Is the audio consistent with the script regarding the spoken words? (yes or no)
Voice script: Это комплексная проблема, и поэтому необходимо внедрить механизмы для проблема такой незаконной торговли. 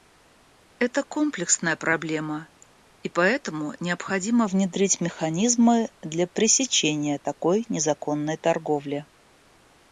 no